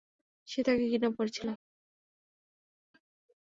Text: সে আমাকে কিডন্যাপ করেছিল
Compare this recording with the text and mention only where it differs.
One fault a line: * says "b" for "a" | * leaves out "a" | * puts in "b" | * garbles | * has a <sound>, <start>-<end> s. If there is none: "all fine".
* says "তাকে" for "আমাকে"